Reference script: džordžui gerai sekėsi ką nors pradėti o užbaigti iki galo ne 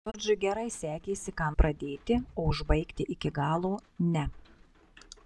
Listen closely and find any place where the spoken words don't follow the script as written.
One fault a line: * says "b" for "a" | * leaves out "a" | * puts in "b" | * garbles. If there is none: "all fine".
* leaves out "nors"